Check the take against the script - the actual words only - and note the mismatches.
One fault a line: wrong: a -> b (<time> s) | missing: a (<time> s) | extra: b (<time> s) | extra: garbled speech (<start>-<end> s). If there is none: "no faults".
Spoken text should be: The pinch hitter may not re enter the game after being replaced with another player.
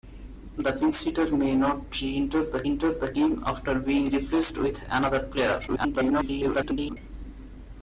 extra: enter the (2.7 s)
extra: garbled speech (5.7-7.0 s)